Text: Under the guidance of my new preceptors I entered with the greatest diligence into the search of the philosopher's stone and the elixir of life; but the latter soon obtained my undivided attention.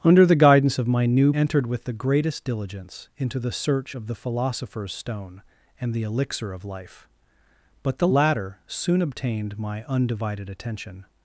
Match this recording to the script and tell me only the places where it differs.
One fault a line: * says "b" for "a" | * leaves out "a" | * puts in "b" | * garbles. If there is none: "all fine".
* leaves out "preceptors I"